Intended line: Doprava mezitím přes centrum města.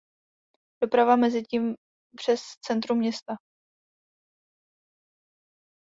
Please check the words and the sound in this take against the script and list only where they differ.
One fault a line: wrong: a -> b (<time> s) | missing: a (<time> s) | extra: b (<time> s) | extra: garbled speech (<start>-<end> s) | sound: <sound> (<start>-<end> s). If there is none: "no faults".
no faults